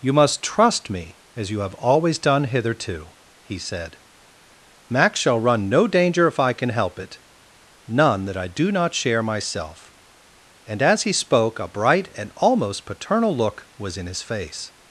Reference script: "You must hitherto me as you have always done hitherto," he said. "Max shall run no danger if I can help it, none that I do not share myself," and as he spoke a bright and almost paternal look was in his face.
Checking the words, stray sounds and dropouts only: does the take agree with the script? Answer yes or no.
no